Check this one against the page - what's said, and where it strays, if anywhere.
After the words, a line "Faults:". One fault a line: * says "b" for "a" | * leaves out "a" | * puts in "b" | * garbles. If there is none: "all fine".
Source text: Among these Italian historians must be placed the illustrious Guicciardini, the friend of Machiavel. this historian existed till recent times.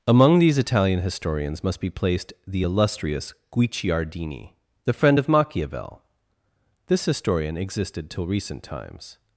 Among these Italian historians must be placed the illustrious Guicciardini, the friend of Machiavel. this historian existed till recent times.
Faults:
all fine